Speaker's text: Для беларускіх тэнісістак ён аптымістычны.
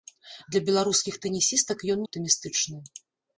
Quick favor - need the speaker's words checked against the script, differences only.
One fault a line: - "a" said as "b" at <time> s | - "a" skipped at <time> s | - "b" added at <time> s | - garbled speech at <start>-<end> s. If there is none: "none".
none